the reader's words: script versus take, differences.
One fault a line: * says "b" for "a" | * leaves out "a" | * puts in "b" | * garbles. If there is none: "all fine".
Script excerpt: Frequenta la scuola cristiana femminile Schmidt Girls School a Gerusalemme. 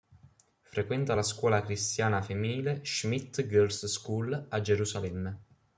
all fine